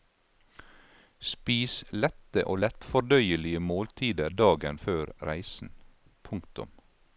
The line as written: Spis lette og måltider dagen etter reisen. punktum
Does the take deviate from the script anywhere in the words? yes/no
yes